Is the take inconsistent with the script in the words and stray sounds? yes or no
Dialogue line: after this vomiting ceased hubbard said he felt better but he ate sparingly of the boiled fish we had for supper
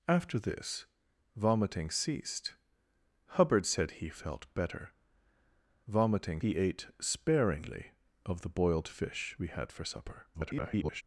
yes